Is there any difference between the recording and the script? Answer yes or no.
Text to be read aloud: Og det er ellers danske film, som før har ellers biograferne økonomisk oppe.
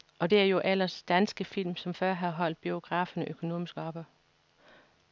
yes